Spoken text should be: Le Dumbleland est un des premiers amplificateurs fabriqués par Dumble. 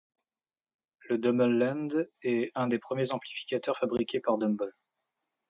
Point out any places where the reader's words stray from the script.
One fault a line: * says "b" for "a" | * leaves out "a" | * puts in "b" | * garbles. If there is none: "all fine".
all fine